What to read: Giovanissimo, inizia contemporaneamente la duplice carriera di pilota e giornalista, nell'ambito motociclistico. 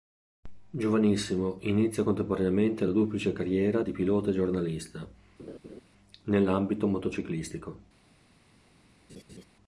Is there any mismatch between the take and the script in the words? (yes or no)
no